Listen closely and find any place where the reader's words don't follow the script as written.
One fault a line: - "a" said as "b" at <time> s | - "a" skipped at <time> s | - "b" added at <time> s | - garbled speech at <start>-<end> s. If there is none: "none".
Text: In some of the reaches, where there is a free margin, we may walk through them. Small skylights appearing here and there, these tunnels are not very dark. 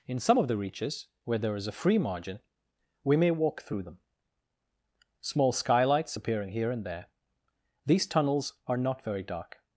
none